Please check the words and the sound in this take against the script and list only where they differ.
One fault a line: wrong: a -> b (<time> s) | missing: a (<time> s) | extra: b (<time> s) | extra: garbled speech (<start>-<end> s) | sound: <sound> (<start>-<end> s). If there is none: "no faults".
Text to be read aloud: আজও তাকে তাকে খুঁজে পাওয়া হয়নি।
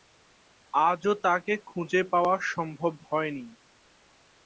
missing: তাকে (1.5 s)
extra: সম্ভব (2.5 s)